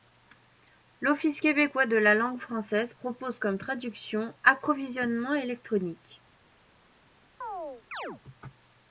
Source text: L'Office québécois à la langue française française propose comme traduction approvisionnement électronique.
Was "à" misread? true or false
true